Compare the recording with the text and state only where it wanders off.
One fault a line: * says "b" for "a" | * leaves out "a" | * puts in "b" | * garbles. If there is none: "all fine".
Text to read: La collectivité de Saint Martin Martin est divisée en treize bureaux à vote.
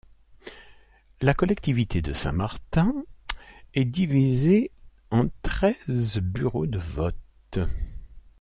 * leaves out "Martin"
* says "de" for "à"